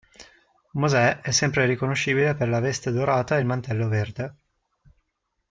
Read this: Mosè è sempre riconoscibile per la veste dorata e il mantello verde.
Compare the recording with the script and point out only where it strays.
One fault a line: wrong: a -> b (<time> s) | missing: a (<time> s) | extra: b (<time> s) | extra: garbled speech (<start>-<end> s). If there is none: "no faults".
no faults